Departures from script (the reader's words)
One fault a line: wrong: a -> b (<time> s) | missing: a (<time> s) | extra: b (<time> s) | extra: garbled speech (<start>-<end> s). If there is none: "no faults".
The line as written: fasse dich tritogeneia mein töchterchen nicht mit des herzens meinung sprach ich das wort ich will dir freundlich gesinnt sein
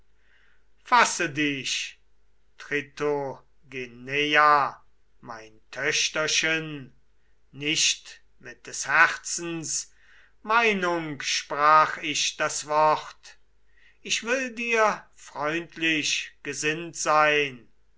no faults